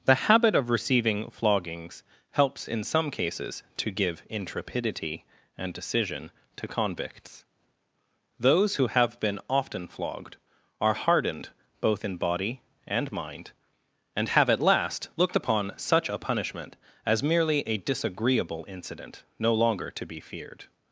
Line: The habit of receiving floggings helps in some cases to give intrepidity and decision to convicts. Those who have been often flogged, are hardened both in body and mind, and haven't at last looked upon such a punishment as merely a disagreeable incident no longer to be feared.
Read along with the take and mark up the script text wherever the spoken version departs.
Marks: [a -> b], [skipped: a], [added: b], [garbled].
The habit of receiving floggings helps in some cases to give intrepidity and decision to convicts. Those who have been often flogged, are hardened both in body and mind, and [haven't -> have] at last looked upon such a punishment as merely a disagreeable incident no longer to be feared.